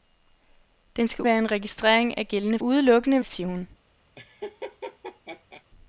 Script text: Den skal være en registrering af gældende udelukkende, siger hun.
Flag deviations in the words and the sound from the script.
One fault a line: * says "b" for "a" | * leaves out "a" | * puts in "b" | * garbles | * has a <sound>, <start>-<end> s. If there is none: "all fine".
* has a laugh, 4.2-5.6 s